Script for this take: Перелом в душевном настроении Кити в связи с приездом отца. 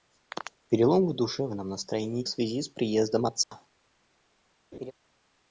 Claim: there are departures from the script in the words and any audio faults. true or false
true